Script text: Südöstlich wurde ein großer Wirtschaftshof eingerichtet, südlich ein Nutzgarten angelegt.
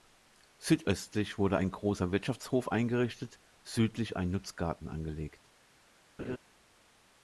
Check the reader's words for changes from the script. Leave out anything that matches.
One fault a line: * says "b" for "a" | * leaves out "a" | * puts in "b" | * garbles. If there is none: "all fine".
all fine